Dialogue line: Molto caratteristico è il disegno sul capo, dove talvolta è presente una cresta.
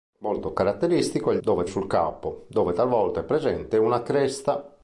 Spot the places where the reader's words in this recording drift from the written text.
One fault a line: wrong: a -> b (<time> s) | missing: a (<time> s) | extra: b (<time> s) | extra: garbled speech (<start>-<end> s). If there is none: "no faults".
wrong: disegno -> dove (1.4 s)